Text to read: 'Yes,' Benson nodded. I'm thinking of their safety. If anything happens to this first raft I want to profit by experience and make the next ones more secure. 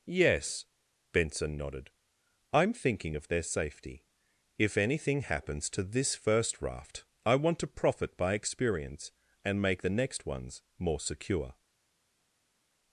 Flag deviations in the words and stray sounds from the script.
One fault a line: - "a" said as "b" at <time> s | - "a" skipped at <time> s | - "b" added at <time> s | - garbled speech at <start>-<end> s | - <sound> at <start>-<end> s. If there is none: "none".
none